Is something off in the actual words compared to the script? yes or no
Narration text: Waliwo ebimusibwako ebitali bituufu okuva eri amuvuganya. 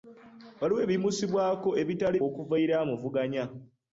yes